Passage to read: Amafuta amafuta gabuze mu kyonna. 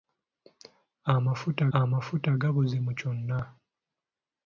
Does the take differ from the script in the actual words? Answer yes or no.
no